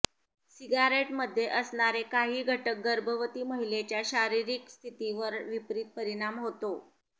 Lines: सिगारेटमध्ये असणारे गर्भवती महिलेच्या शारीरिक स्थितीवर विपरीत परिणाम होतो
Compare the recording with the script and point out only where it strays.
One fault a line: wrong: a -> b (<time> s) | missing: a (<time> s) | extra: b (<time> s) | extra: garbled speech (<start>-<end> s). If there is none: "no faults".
extra: काही घटक (2.0 s)